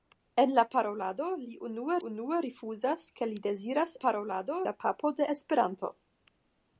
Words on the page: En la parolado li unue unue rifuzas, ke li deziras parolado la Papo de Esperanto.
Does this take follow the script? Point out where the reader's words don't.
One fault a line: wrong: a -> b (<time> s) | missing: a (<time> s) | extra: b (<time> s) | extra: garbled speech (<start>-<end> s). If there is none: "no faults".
no faults